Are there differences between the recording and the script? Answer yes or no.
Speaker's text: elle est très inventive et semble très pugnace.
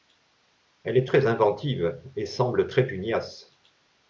no